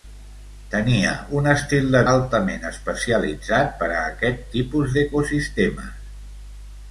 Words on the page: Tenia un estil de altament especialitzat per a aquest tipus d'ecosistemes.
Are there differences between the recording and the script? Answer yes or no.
no